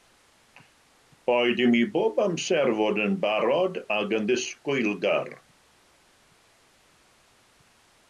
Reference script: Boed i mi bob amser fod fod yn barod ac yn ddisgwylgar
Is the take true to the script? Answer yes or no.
no